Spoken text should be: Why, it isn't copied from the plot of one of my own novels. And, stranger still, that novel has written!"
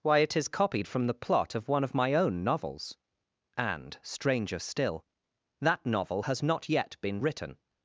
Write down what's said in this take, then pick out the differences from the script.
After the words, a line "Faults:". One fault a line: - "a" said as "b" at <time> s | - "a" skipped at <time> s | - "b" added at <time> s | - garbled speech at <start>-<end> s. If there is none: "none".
Why, it is copied from the plot of one of my own novels. And, stranger still, that novel has not yet been written!"
Faults:
- "isn't" said as "is" at 0.3 s
- "not yet been" added at 6.4 s